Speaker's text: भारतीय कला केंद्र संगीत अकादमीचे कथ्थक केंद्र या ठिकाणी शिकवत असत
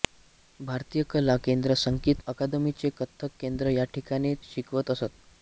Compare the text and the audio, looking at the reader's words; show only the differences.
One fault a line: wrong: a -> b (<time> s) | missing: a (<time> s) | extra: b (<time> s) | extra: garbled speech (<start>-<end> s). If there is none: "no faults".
no faults